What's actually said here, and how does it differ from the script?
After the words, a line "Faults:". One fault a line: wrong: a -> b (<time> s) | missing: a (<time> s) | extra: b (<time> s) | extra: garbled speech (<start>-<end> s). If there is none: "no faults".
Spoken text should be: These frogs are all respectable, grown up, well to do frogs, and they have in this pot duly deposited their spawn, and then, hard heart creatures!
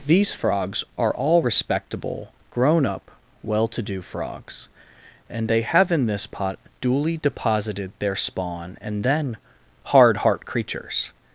These frogs are all respectable, grown up, well to do frogs, and they have in this pot duly deposited their spawn, and then, hard heart creatures!
Faults:
no faults